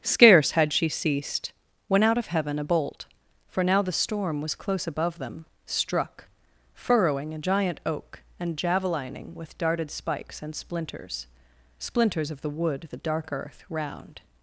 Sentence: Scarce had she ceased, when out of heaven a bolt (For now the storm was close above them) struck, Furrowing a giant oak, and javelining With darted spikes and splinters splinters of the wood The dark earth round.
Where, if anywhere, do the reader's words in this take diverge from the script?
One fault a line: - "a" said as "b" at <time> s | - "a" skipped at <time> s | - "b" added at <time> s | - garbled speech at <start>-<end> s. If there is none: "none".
none